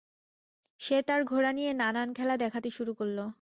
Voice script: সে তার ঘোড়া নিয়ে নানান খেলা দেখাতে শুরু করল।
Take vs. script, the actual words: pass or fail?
pass